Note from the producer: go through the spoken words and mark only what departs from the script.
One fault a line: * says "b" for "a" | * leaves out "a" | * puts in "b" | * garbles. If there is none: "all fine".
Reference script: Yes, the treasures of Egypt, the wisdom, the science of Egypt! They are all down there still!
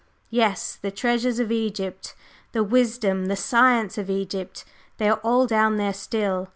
all fine